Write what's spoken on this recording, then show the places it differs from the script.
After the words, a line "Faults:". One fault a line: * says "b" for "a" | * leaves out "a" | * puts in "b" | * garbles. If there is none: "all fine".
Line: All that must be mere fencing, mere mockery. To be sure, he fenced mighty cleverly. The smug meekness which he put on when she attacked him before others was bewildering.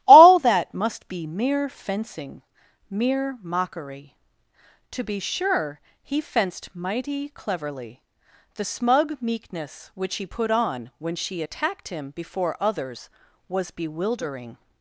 All that must be mere fencing, mere mockery. To be sure, he fenced mighty cleverly. The smug meekness which he put on when she attacked him before others was bewildering.
Faults:
all fine